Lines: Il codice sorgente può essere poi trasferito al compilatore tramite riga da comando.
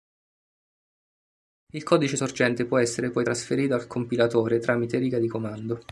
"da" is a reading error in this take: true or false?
true